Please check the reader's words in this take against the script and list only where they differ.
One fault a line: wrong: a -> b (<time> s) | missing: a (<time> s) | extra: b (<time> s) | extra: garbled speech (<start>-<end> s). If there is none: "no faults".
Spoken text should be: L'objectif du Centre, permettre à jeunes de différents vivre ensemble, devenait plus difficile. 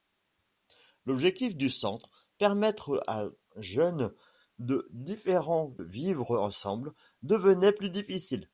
no faults